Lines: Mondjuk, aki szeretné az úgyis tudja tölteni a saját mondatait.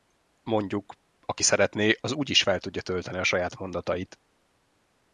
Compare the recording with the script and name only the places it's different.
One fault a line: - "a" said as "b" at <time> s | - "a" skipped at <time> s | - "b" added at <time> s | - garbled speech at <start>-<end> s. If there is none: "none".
- "fel" added at 2.4 s